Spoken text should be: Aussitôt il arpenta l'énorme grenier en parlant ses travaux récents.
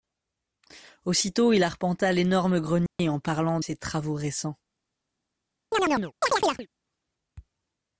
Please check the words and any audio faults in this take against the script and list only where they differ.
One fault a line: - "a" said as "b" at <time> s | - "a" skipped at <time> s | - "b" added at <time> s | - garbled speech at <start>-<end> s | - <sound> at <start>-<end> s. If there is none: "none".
- dropout at 2.9-3.0 s
- chirp at 5.7-6.7 s